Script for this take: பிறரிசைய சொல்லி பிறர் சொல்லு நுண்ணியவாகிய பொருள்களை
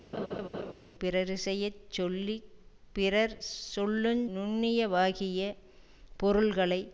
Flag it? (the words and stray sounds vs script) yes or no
yes